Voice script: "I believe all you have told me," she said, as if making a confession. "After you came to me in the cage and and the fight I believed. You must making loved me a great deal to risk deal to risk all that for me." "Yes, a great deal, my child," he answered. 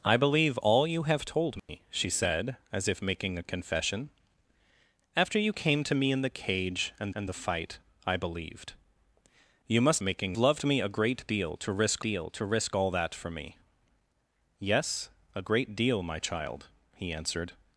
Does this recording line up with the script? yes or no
yes